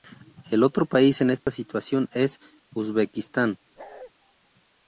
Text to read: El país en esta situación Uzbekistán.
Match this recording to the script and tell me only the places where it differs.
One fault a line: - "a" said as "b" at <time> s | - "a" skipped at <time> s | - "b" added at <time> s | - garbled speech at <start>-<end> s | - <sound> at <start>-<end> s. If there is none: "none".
- "otro" added at 0.6 s
- dropout at 1.4-1.5 s
- "es" added at 2.1 s
- bark at 3.8-4.1 s